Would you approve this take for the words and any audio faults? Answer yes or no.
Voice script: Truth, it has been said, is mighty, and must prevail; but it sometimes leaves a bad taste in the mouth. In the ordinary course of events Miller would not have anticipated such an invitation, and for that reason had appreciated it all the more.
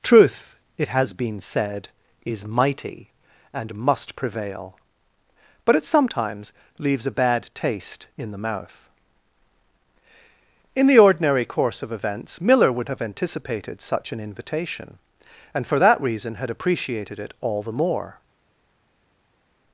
no